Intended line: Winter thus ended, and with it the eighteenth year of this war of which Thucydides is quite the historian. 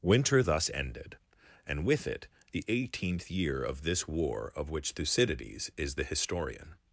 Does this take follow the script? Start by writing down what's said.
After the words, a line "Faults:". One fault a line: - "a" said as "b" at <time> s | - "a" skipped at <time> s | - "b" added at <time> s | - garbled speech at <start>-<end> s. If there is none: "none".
Winter thus ended, and with it the eighteenth year of this war of which Thucydides is the historian.
Faults:
- "quite" skipped at 5.9 s